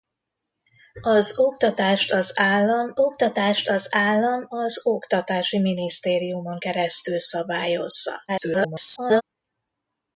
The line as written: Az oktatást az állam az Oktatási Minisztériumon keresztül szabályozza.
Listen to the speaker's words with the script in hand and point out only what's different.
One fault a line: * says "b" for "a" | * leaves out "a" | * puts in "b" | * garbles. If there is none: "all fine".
* puts in "oktatást az állam"
* garbles